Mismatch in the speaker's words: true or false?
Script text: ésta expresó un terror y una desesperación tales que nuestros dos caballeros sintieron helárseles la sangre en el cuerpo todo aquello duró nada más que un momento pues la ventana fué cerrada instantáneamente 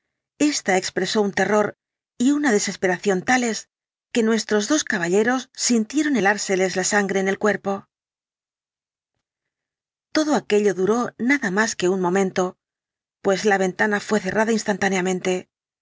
false